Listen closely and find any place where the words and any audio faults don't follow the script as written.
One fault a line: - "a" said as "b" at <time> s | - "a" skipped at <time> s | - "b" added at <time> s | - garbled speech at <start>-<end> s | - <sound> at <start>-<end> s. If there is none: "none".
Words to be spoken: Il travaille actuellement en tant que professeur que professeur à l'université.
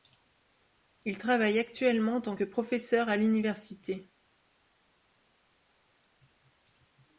- "que professeur" skipped at 3.1 s